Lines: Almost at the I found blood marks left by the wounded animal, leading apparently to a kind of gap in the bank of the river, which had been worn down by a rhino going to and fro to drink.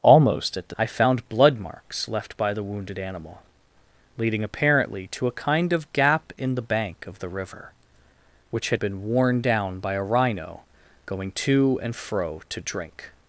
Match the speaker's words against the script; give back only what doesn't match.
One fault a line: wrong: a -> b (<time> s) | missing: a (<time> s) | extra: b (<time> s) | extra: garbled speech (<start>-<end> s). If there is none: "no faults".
no faults